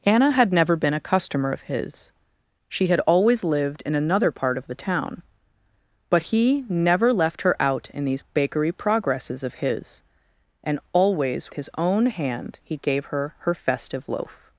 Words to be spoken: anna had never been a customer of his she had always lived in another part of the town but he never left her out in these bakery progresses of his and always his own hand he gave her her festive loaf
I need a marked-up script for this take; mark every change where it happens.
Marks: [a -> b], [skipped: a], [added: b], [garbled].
anna had never been a customer of his she had always lived in another part of the town but he never left her out in these bakery progresses of his and always his own hand he gave her her festive loaf